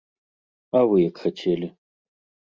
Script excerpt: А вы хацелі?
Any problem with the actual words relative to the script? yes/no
yes